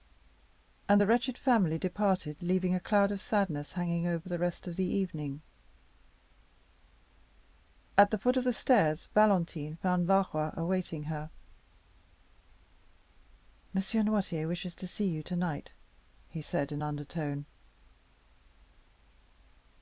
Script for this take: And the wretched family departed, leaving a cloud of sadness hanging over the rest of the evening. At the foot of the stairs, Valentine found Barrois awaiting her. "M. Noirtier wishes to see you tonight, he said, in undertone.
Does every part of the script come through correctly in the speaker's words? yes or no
yes